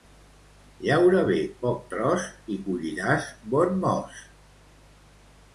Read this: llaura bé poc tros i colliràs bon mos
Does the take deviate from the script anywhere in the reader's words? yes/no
no